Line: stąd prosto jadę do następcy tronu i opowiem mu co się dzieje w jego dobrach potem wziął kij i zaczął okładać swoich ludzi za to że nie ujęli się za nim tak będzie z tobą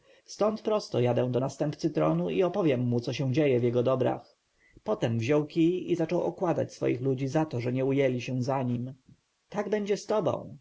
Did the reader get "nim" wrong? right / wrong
right